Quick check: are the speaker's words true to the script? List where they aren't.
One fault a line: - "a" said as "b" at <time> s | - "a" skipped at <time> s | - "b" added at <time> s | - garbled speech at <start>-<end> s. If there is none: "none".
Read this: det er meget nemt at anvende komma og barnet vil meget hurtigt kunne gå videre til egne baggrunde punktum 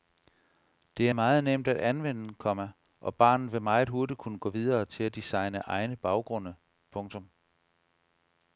- "at designe" added at 5.0 s